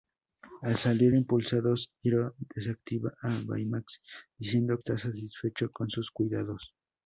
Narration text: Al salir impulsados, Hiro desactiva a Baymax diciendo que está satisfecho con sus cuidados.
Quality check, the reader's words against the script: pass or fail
fail